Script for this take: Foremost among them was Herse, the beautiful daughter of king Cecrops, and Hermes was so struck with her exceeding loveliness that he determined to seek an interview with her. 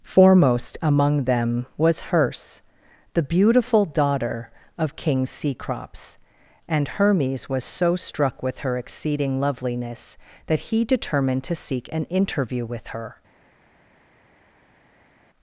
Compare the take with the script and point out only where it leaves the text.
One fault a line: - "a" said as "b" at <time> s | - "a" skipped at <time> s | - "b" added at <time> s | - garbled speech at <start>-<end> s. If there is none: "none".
none